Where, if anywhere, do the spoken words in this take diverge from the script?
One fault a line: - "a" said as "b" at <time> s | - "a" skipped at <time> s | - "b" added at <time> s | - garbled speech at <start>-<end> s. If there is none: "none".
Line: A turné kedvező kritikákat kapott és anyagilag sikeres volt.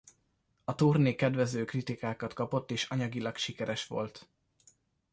none